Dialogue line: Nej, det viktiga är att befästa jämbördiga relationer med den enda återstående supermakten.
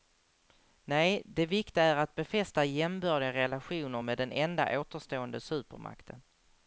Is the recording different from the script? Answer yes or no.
no